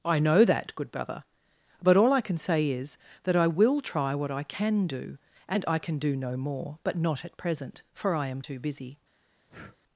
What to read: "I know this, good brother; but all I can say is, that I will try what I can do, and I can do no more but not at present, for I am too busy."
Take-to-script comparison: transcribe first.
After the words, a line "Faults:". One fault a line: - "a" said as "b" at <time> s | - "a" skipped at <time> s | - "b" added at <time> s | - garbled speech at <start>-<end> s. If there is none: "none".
"I know that, good brother; but all I can say is, that I will try what I can do, and I can do no more but not at present, for I am too busy."
Faults:
- "this" said as "that" at 0.5 s